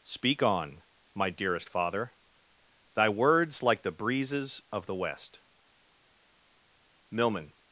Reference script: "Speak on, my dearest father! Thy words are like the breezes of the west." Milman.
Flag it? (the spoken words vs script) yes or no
yes